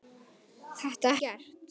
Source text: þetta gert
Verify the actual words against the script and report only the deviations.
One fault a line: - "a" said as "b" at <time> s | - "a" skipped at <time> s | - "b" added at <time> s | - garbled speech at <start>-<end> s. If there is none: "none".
none